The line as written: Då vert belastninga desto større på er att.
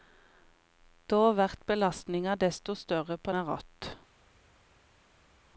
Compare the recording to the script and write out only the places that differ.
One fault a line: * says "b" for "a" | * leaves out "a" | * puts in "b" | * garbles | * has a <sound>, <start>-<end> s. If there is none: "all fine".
all fine